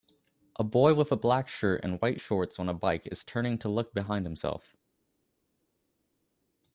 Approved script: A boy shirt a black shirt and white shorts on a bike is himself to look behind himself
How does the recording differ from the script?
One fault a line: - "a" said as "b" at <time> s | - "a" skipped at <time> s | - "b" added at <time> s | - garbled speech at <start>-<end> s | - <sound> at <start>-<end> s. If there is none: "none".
- "shirt" said as "with" at 0.9 s
- "himself" said as "turning" at 3.2 s